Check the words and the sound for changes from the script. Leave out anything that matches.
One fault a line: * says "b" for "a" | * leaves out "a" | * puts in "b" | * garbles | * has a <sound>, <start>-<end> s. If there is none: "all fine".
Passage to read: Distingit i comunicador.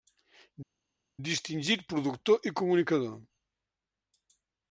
* puts in "productor"